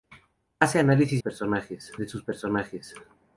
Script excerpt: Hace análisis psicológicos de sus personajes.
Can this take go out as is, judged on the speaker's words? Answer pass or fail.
fail